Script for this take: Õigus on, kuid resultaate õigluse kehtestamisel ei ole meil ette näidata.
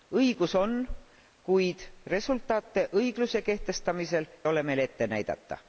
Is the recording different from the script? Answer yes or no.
yes